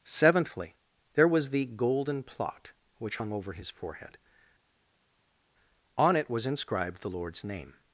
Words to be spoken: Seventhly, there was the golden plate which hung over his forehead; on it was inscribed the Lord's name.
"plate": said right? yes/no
no